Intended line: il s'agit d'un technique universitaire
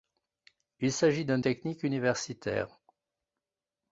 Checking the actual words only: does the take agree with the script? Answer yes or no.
yes